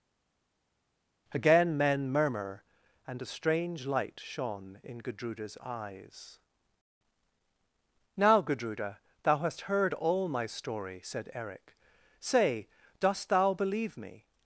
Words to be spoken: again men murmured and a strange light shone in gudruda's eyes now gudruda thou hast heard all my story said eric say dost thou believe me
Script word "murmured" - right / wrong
wrong